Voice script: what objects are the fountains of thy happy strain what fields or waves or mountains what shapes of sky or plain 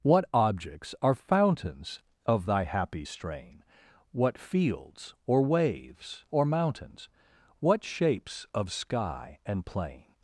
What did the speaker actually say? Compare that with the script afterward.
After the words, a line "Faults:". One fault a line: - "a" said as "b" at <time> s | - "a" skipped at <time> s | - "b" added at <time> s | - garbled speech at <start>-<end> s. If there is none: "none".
what objects are fountains of thy happy strain what fields or waves or mountains what shapes of sky and plain
Faults:
- "the" skipped at 1.1 s
- "or" said as "and" at 9.4 s